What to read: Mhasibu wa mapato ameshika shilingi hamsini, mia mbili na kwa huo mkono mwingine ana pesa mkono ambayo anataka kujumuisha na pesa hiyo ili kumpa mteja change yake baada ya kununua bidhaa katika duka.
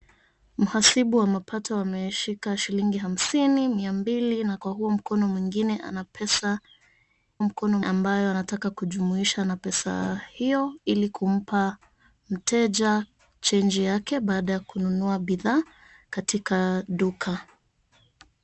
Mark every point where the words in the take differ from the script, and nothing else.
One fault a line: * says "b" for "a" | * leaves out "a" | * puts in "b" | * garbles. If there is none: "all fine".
all fine